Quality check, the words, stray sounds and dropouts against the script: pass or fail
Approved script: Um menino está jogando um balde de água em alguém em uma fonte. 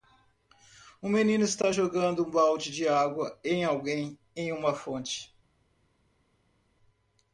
pass